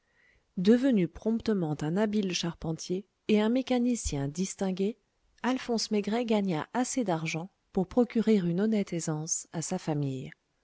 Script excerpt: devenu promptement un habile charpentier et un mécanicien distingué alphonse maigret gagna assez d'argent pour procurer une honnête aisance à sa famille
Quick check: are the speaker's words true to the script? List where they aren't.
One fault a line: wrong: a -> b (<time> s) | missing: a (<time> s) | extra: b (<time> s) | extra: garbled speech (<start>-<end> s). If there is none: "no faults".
no faults